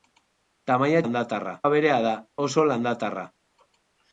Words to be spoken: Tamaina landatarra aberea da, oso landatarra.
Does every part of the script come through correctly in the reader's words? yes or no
yes